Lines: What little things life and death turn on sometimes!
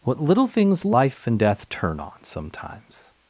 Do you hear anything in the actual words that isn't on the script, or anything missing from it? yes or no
no